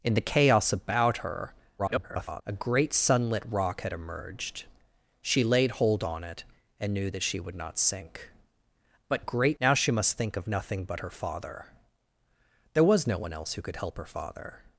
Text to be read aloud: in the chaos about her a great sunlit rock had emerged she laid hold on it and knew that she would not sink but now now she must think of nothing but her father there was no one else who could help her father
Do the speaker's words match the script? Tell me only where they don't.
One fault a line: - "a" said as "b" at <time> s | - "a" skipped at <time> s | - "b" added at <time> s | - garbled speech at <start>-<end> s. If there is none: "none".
- garbled speech at 1.8-2.4 s
- "now" said as "great" at 9.2 s